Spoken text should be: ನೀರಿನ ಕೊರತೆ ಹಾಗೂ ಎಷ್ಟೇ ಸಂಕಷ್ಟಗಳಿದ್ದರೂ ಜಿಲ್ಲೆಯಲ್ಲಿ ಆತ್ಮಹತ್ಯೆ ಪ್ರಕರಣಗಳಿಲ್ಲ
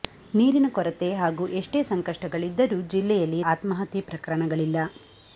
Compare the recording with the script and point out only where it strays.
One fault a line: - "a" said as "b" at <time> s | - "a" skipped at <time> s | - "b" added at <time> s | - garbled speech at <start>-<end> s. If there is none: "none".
none